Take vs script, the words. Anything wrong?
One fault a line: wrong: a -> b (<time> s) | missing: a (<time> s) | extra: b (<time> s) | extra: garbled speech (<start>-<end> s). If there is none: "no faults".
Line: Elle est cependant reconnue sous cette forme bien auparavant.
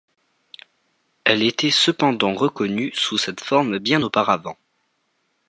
wrong: est -> était (1.4 s)